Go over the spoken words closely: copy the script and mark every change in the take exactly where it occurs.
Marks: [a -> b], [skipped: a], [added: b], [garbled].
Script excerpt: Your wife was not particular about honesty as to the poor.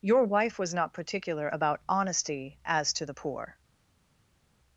Your wife was not particular about honesty as to the poor.